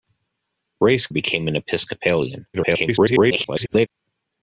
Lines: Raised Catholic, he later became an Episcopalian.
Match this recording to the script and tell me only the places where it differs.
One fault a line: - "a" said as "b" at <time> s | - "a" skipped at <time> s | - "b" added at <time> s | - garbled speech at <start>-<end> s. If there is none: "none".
- "Catholic he later" skipped at 1.1 s
- garbled speech at 2.5-3.9 s